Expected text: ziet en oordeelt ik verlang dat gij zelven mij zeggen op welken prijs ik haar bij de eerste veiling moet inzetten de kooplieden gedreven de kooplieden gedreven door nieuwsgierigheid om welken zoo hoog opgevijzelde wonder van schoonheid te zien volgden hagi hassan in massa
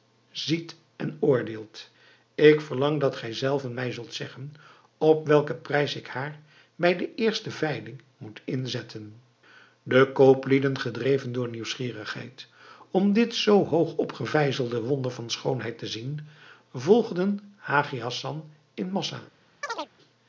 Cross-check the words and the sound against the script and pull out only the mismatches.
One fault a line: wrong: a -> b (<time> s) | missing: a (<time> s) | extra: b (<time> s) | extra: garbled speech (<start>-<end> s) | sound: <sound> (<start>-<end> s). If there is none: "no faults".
extra: zult (3.9 s)
missing: de kooplieden gedreven (11.3 s)
wrong: welken -> dit (13.1 s)
sound: chirp (19.6-19.9 s)